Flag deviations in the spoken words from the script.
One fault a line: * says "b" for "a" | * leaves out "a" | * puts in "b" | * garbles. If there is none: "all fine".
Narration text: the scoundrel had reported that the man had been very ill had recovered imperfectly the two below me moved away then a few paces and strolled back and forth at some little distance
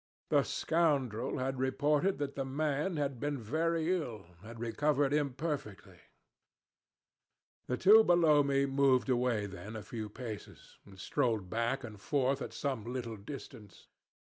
all fine